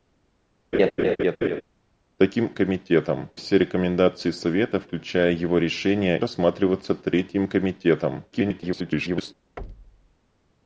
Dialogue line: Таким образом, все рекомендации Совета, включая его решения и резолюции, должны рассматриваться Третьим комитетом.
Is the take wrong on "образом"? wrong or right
wrong